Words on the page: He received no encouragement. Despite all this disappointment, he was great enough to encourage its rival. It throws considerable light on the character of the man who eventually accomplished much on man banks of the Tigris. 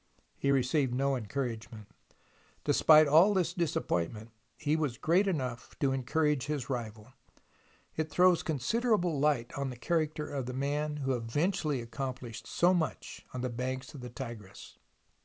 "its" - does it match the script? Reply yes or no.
no